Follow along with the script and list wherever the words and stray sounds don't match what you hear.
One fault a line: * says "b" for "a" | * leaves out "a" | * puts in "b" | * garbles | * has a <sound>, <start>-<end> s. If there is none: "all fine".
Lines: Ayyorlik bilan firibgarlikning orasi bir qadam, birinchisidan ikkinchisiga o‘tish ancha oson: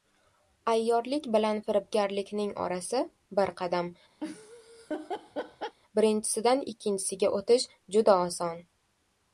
* has a laugh, 4.2-5.8 s
* says "juda" for "ancha"